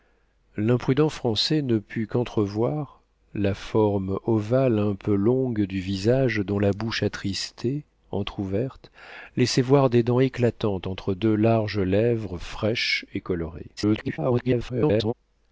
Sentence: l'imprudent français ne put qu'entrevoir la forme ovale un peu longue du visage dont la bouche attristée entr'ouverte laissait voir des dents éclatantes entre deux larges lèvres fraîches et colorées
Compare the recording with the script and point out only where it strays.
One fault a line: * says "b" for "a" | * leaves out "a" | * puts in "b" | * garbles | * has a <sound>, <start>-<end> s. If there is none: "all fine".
* garbles